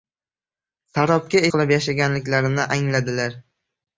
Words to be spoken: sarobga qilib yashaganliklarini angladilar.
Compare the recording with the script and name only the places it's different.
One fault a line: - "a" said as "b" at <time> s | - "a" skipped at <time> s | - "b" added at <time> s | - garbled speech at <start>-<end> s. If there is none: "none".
none